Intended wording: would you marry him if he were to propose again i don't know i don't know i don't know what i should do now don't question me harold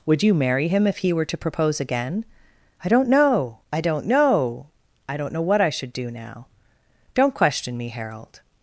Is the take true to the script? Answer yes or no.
yes